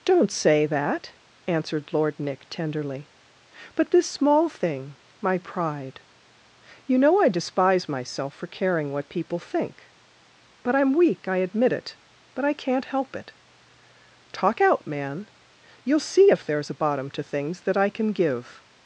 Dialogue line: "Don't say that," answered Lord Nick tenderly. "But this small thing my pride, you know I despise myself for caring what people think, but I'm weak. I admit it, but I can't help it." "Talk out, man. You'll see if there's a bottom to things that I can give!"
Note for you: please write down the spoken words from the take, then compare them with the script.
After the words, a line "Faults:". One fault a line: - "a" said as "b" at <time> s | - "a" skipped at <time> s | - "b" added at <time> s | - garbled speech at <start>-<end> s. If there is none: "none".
"Don't say that," answered Lord Nick tenderly. "But this small thing my pride, you know I despise myself for caring what people think, but I'm weak. I admit it, but I can't help it." "Talk out, man. You'll see if there's a bottom to things that I can give!"
Faults:
none